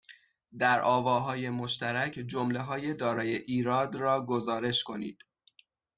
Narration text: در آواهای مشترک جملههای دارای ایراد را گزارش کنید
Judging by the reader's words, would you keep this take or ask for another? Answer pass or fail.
pass